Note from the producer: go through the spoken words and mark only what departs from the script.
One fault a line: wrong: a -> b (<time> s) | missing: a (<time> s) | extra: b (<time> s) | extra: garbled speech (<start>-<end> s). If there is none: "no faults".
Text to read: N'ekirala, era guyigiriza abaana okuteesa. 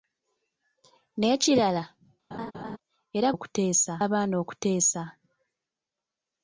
wrong: guyigiriza -> okuteesa (3.3 s)